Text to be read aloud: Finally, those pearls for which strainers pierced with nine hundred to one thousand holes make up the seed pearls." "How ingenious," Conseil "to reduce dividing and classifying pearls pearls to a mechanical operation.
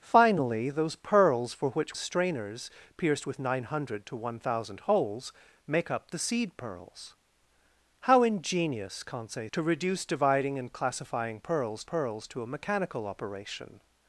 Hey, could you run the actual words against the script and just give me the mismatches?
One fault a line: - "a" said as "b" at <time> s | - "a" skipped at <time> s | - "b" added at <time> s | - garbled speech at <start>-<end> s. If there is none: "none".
none